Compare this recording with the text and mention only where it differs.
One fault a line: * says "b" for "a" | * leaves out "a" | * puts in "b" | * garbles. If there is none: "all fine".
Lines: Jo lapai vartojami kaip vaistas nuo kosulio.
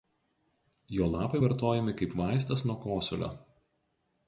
all fine